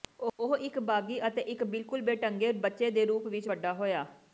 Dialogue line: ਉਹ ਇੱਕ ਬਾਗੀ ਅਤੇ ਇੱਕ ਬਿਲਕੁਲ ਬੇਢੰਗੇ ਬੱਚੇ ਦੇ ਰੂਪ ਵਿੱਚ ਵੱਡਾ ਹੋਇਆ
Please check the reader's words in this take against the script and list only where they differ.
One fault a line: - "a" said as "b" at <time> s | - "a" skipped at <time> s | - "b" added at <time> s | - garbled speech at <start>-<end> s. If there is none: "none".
none